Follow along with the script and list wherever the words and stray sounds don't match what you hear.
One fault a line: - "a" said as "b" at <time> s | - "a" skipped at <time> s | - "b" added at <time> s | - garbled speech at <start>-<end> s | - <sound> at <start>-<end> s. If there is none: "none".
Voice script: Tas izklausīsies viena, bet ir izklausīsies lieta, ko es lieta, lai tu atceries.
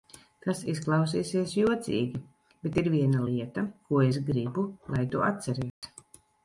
- "viena" said as "jocīgi" at 1.6 s
- "izklausīsies" said as "viena" at 3.0 s
- "lieta" said as "gribu" at 4.3 s
- dropout at 5.7-5.8 s